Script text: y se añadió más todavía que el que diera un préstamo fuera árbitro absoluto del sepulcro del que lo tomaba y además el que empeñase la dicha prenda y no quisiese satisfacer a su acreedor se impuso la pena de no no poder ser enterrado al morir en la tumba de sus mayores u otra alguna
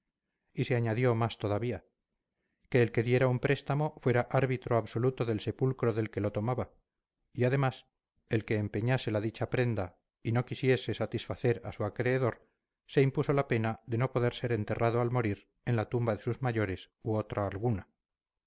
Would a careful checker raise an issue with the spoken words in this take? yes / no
yes